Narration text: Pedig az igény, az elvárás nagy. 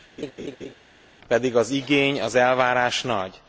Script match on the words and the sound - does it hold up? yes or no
no